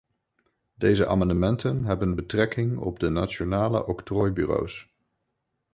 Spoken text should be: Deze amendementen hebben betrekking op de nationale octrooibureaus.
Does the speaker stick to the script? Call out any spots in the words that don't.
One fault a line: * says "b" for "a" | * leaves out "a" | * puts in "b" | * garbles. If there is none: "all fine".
all fine